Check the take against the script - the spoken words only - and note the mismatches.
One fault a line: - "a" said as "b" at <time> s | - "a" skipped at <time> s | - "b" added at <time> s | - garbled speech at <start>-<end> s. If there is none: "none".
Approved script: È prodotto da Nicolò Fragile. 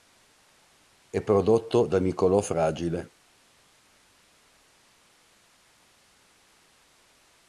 none